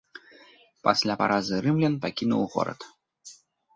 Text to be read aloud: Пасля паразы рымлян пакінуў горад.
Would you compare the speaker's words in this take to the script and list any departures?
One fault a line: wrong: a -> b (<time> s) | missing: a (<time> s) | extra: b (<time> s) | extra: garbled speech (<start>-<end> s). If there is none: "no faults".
no faults